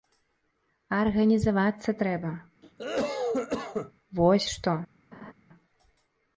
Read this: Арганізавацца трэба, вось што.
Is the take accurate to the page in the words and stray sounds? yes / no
no